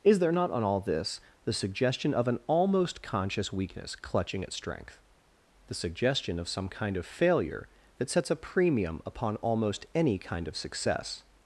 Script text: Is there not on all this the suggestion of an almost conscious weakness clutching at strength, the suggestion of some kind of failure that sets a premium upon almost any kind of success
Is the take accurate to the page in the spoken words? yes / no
yes